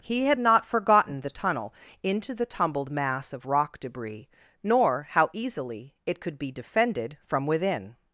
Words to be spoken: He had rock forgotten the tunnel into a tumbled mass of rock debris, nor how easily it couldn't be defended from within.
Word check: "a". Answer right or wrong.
wrong